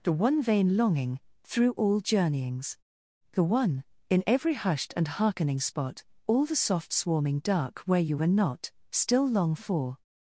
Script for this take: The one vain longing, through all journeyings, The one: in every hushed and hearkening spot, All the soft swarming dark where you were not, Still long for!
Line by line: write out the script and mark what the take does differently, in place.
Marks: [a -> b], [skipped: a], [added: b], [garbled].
The one vain longing, through all journeyings, The one: in every hushed and hearkening spot, All the soft swarming dark where you were not, Still long for!